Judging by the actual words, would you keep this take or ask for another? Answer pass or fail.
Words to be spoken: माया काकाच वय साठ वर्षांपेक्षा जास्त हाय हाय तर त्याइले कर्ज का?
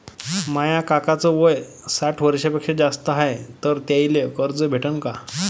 fail